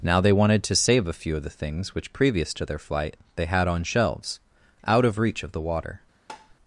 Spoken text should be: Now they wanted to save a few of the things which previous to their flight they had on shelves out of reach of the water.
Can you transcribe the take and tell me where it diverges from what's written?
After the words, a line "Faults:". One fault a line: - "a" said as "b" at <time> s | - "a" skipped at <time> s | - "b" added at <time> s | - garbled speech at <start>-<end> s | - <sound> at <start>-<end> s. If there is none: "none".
Now they wanted to save a few of the things which previous to their flight they had on shelves out of reach of the water.
Faults:
- tap at 6.3-6.5 s